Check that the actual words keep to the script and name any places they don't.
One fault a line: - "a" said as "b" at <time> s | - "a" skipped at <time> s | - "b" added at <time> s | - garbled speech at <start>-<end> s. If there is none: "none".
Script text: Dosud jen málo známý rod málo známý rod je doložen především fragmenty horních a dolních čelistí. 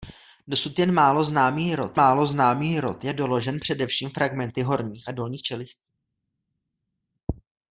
none